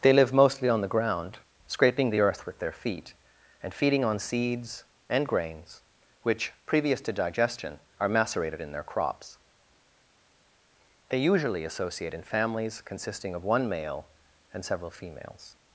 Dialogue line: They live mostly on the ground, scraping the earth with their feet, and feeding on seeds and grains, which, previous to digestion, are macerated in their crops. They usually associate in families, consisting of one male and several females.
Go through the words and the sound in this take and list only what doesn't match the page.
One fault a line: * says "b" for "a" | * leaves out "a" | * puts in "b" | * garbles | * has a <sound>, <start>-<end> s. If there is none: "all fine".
all fine